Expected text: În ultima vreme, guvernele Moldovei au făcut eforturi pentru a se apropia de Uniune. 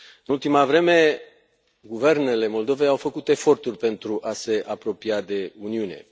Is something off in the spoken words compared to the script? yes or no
no